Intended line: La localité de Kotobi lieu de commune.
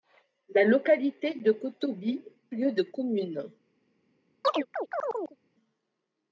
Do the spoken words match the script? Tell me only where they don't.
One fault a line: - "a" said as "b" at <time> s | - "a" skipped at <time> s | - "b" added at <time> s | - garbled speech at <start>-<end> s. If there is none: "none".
none